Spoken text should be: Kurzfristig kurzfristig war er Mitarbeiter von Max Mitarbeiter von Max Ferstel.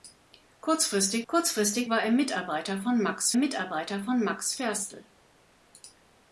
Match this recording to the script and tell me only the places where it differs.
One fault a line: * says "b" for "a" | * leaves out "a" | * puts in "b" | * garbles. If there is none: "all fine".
all fine